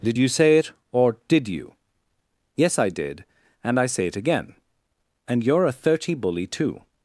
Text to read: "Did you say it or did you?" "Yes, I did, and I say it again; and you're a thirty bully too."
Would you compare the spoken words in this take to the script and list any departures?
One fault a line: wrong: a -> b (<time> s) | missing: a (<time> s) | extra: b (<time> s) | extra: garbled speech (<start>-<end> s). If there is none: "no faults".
no faults